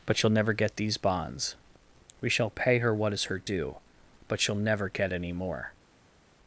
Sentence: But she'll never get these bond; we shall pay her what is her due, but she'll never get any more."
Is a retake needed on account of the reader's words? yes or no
yes